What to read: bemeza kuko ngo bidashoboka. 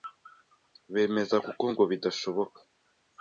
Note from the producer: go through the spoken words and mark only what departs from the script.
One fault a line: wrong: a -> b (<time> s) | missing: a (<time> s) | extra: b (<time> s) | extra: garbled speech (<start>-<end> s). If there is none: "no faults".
no faults